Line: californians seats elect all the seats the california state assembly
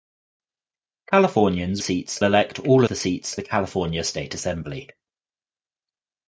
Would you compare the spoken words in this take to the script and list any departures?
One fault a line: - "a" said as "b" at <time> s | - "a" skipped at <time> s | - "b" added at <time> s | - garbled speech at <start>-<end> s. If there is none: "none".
none